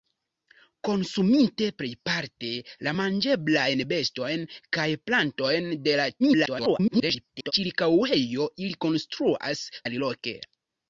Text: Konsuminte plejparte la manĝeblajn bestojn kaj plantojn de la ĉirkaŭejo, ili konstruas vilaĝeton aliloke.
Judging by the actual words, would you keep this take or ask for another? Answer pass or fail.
fail